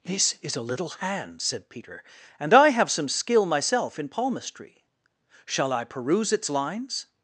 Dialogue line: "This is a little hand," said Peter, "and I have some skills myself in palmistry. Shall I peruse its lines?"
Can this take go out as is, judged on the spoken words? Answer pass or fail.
fail